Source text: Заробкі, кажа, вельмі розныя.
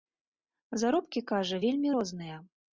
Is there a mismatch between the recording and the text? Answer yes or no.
no